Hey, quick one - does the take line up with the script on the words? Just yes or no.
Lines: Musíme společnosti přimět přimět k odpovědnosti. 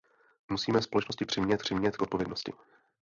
yes